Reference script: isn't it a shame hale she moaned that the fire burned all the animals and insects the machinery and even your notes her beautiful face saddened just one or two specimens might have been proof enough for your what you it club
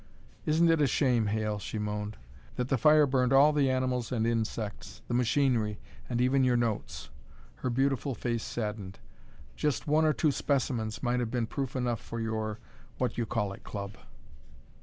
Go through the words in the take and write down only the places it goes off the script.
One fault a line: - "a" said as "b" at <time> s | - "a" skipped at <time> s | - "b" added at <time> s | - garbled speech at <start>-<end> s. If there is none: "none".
- "call" added at 13.3 s